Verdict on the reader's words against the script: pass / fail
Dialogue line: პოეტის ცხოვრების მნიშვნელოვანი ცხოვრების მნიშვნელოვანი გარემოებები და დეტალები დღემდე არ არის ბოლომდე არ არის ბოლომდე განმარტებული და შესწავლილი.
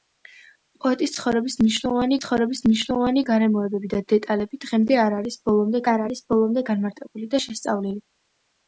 pass